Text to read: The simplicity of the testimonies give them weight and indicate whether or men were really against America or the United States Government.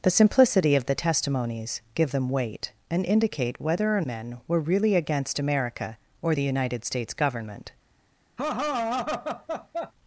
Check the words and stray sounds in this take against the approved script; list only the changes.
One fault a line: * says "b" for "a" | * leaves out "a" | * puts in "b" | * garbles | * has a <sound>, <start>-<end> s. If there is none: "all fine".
* has a laugh, 8.4-9.9 s